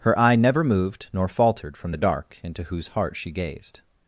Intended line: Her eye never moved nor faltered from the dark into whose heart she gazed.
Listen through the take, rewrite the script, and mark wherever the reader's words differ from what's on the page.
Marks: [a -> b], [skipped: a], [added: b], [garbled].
Her eye never moved nor faltered from the dark into whose heart she gazed.